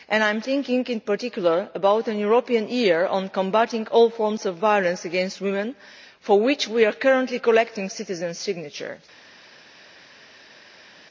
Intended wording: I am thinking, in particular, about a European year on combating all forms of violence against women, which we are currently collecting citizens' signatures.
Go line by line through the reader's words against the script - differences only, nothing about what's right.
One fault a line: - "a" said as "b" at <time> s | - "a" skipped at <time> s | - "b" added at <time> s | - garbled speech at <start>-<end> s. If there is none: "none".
- "for" added at 6.2 s